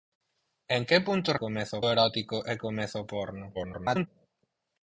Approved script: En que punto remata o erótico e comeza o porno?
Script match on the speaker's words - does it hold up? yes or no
no